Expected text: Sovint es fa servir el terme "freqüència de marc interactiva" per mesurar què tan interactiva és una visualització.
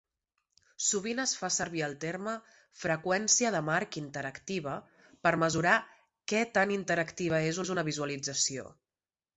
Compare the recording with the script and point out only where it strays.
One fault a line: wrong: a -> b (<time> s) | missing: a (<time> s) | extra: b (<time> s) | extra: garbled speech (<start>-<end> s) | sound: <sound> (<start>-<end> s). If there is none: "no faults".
extra: és (7.6 s)